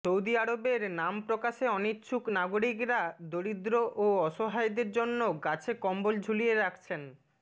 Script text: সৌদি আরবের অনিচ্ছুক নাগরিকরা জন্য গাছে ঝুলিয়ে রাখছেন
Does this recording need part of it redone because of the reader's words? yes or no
yes